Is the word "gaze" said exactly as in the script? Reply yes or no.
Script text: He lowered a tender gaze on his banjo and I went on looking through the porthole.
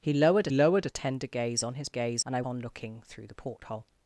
yes